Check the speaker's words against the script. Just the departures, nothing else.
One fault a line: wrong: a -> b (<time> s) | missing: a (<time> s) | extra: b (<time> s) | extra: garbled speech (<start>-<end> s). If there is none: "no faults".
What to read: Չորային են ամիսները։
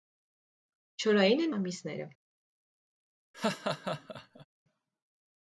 no faults